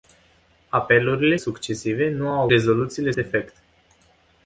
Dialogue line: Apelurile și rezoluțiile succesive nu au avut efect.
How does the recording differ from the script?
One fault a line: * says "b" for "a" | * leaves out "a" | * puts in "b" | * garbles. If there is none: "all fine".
* leaves out "și rezoluțiile"
* says "rezoluțiile" for "avut"